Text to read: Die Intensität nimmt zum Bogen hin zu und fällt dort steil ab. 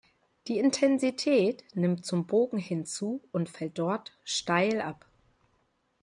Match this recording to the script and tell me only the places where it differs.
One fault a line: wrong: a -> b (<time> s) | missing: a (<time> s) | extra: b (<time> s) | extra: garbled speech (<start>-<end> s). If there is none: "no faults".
no faults